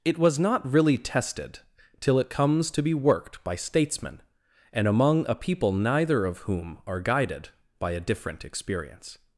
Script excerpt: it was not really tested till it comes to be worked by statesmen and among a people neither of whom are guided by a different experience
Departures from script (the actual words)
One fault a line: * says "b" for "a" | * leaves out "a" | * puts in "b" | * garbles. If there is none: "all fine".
all fine